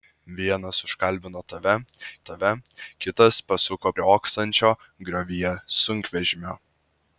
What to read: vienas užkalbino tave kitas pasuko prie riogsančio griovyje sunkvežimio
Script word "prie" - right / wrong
wrong